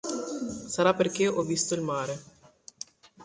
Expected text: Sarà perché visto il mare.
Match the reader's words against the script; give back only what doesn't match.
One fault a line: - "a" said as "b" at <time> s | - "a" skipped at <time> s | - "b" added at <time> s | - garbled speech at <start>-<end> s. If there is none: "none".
- "ho" added at 1.3 s